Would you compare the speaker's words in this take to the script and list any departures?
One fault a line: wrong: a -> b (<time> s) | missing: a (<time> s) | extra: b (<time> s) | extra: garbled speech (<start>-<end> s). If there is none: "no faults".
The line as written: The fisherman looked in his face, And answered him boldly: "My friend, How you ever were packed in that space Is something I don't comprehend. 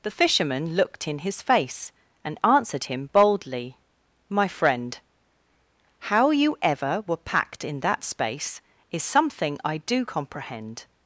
wrong: don't -> do (9.8 s)